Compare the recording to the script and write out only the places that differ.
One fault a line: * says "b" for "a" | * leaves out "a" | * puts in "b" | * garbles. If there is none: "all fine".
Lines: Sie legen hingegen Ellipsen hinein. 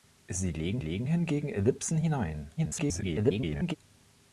* puts in "legen"
* garbles